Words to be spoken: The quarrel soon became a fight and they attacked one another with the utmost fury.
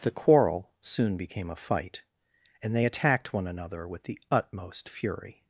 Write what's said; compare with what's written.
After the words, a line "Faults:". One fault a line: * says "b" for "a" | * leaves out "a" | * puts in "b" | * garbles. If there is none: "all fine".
The quarrel soon became a fight and they attacked one another with the utmost fury.
Faults:
all fine